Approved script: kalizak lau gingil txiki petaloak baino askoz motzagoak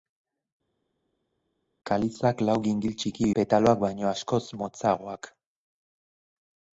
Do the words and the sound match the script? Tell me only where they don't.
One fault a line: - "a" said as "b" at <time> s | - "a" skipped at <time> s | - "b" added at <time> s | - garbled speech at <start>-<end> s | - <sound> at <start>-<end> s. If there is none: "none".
none